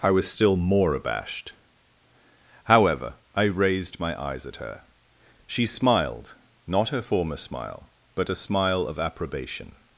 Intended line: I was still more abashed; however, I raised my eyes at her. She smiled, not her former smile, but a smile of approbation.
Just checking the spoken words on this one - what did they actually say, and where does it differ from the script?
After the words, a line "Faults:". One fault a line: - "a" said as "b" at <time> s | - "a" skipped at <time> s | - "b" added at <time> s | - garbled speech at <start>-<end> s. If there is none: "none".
I was still more abashed; however, I raised my eyes at her. She smiled, not her former smile, but a smile of approbation.
Faults:
none